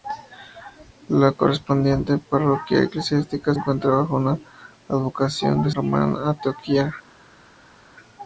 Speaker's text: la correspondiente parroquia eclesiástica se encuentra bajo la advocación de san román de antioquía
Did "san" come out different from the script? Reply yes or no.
yes